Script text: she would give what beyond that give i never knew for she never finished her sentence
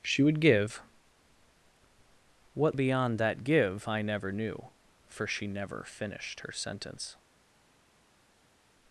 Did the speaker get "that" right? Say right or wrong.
right